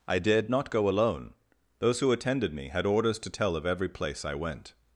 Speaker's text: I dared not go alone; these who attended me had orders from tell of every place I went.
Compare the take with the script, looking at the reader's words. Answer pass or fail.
fail